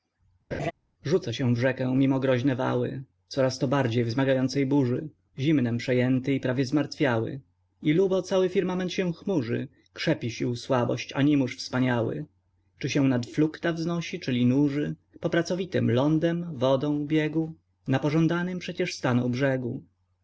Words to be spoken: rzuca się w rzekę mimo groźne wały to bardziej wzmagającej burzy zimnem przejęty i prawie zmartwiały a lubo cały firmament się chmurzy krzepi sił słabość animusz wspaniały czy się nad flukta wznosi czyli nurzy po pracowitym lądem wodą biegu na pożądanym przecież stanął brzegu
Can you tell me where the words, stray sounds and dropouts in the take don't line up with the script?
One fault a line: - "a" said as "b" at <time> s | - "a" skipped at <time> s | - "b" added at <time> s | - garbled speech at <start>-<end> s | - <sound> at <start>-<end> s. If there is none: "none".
- laugh at 0.5-0.7 s
- "coraz" added at 3.3 s
- "a" said as "i" at 7.8 s